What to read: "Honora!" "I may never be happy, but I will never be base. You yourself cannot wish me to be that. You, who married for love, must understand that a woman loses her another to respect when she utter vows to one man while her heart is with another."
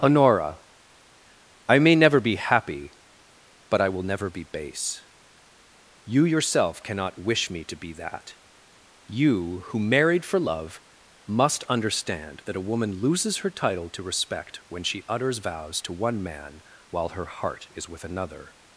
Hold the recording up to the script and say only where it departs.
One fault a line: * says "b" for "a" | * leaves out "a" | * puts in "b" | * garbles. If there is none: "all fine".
* says "title" for "another"
* says "utters" for "utter"